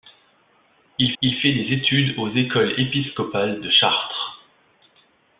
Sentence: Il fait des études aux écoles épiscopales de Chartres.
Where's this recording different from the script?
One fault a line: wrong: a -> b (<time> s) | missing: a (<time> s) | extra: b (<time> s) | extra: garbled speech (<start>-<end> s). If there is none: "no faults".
extra: il (1.2 s)